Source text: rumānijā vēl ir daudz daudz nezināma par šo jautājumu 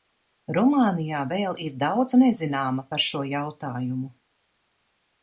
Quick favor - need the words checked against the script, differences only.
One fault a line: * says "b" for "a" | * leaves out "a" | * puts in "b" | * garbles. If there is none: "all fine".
* leaves out "daudz"